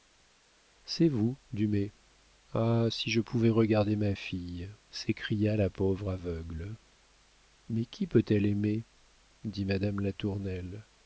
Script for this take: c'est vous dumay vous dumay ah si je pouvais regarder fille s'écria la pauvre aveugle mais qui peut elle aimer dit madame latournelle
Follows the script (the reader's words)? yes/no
no